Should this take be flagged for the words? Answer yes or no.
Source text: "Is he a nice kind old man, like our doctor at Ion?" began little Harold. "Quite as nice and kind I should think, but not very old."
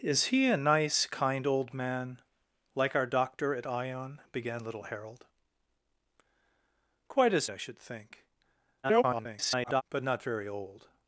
yes